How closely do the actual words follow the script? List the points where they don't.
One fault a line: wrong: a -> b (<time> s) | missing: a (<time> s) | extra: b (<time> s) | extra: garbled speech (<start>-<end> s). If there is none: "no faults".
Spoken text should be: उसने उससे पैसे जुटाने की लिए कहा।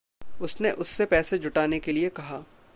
wrong: की -> के (1.8 s)